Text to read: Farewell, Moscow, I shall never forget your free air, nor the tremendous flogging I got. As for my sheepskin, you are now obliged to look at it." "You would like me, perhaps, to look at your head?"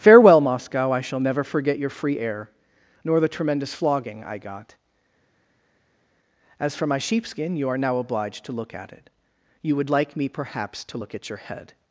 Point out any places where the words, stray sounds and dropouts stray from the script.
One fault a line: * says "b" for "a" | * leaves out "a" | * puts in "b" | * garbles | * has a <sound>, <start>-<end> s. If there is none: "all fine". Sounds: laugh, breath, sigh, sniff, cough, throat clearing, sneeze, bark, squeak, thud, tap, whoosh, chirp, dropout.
all fine